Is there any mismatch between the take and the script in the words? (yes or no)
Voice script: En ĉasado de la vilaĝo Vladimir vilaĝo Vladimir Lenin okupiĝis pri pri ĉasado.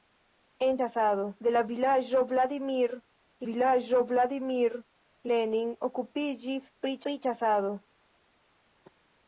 no